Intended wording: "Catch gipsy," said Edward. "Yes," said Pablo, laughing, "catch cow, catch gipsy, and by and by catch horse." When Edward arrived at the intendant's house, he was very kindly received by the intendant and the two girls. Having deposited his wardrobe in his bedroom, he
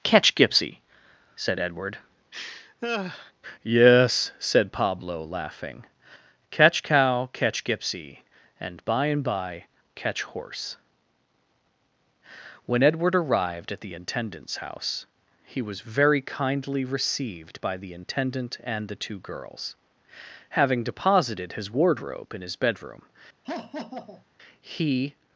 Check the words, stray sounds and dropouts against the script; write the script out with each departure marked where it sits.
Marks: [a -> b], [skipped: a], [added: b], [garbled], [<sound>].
"Catch gipsy," said Edward. [laugh] "Yes," said Pablo, laughing, "catch cow, catch gipsy, and by and by catch horse." When Edward arrived at the intendant's house, he was very kindly received by the intendant and the two girls. Having deposited his wardrobe in his bedroom, [laugh] he